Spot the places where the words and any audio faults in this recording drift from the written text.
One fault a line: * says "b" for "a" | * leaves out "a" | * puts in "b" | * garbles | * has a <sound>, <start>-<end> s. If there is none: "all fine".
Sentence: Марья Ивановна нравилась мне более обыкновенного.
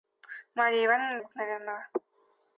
* leaves out "нравилась мне более"